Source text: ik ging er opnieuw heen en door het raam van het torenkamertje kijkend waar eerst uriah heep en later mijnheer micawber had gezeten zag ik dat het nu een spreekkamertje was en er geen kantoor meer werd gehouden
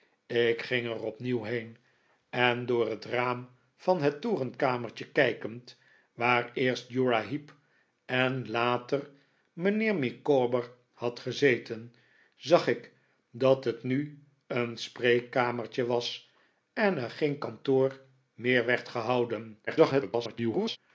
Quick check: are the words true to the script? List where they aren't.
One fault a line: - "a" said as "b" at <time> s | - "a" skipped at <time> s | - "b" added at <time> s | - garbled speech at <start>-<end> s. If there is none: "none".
- garbled speech at 19.7-20.8 s